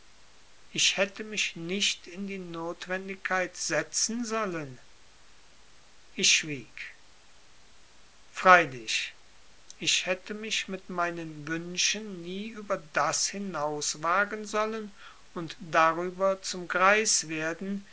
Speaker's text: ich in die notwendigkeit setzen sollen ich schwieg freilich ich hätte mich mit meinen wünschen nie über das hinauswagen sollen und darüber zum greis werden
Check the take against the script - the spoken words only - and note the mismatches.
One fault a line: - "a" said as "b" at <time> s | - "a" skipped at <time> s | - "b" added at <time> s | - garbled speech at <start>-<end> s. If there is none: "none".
- "hätte mich nicht" added at 1.0 s